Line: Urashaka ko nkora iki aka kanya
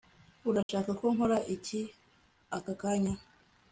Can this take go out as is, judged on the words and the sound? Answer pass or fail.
fail